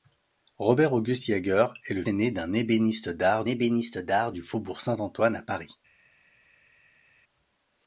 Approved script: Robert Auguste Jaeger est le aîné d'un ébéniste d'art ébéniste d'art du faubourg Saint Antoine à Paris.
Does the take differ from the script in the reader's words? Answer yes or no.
no